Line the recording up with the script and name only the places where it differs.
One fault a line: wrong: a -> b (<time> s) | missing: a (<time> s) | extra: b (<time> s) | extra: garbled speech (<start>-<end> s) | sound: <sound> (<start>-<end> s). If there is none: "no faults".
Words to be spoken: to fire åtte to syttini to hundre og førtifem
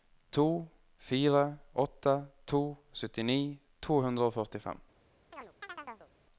sound: chirp (5.3-6.1 s)